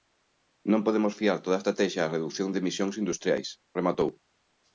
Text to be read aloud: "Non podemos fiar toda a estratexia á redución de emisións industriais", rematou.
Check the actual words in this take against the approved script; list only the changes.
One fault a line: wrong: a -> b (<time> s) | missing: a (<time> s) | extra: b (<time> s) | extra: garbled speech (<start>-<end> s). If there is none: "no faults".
no faults